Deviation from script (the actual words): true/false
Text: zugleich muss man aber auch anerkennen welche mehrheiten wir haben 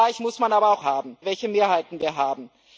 true